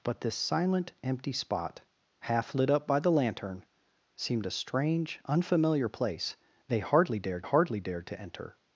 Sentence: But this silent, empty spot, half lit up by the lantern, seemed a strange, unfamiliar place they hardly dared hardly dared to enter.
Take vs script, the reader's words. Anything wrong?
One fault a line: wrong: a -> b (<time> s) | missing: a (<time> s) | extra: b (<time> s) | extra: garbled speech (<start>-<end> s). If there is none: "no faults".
no faults